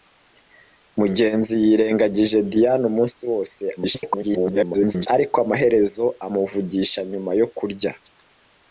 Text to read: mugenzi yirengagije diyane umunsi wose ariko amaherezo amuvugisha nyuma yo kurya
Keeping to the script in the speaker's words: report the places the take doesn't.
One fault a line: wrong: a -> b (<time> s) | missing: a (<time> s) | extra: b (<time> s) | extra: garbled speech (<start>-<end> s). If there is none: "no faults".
extra: garbled speech (3.8-5.1 s)